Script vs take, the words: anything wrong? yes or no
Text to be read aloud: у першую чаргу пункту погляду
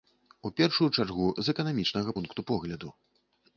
yes